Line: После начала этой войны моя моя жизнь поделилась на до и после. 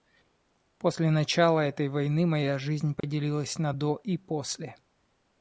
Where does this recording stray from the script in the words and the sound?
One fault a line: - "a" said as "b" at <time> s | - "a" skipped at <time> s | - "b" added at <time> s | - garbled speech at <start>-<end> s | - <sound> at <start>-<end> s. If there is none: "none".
- "моя" skipped at 2.6 s
- dropout at 3.0-3.0 s